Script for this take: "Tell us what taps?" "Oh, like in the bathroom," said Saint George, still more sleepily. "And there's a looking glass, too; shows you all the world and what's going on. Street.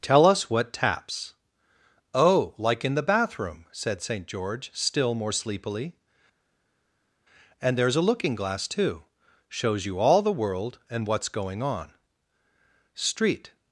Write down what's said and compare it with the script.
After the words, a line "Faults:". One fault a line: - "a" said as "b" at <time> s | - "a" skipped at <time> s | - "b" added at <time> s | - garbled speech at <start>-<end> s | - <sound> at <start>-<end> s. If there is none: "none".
"Tell us what taps?" "Oh, like in the bathroom," said Saint George, still more sleepily. "And there's a looking glass, too; shows you all the world and what's going on. Street.
Faults:
none